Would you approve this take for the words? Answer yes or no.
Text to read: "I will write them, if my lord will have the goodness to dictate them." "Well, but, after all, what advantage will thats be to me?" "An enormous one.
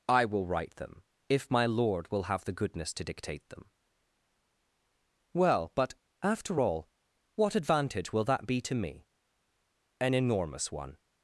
no